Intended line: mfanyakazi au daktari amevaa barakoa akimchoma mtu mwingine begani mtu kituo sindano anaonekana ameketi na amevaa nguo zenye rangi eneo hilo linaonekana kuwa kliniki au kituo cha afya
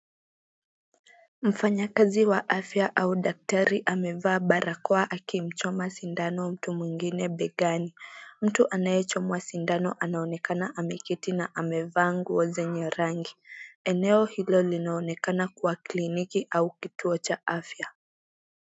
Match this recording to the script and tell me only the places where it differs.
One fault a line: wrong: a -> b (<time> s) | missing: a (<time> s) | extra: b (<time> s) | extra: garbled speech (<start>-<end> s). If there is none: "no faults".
extra: wa afya (2.2 s)
extra: sindano (5.9 s)
wrong: kituo -> anayechomwa (8.7 s)